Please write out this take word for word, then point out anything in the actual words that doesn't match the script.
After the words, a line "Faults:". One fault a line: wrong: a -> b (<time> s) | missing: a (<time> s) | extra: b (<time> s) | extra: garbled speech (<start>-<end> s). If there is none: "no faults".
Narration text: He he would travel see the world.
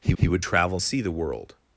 He he would travel see the world.
Faults:
no faults